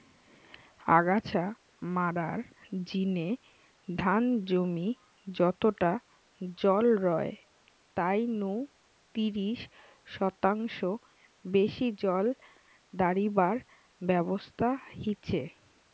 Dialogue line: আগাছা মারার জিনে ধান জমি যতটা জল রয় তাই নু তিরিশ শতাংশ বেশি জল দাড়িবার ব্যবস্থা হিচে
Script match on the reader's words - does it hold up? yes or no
yes